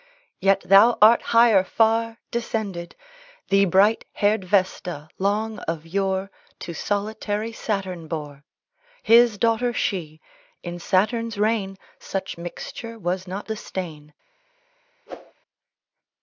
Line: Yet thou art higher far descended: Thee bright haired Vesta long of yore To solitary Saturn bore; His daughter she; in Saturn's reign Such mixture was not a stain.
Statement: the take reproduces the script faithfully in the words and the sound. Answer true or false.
false